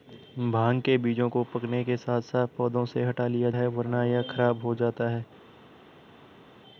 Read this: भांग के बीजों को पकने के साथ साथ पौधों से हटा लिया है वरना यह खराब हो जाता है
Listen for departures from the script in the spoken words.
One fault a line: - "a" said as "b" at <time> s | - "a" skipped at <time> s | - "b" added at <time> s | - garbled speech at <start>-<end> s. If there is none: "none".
none